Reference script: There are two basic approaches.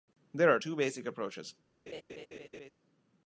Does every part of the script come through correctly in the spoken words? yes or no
yes